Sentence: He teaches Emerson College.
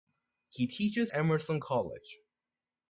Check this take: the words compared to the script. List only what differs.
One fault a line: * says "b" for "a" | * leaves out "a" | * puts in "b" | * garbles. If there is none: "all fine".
all fine